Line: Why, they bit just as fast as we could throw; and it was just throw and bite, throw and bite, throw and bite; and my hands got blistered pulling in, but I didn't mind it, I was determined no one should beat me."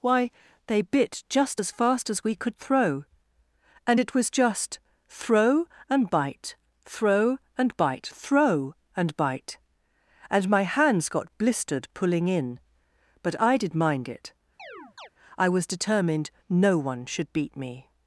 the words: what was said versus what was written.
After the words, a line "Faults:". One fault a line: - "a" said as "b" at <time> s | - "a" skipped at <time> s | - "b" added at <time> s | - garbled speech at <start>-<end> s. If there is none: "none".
Why, they bit just as fast as we could throw; and it was just throw and bite, throw and bite, throw and bite; and my hands got blistered pulling in, but I did mind it, I was determined no one should beat me."
Faults:
- "didn't" said as "did" at 13.6 s